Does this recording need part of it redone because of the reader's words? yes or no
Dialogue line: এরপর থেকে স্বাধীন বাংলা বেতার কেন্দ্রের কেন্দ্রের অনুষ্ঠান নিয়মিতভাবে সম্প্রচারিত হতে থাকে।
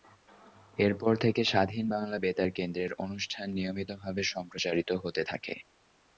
yes